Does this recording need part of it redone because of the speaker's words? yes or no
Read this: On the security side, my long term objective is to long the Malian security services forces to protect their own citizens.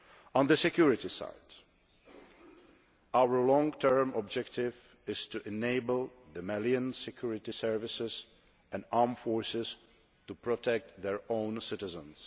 yes